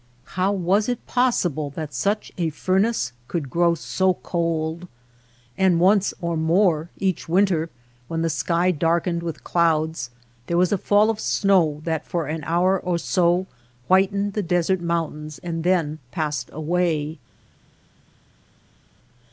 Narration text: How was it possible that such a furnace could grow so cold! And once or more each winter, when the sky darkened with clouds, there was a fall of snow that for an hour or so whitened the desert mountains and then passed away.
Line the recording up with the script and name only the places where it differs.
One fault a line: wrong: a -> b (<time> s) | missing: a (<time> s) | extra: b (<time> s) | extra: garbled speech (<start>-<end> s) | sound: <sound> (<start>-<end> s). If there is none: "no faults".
no faults